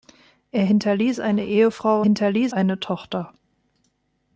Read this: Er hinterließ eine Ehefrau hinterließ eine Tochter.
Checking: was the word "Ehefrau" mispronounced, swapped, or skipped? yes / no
no